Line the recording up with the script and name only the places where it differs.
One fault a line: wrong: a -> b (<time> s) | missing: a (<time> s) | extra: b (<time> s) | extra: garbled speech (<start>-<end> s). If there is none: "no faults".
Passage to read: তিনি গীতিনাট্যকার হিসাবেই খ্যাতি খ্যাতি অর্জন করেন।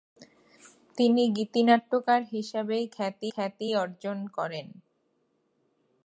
no faults